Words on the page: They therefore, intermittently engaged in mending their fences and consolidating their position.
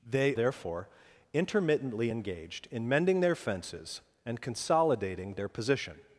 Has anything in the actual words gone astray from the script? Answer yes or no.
no